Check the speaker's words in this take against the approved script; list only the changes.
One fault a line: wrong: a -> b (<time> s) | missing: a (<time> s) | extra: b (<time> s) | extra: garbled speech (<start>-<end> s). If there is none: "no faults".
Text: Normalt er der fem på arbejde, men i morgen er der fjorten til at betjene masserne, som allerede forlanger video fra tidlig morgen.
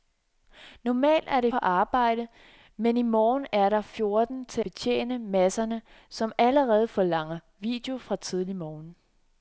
missing: fem (1.5 s)
missing: at (4.6 s)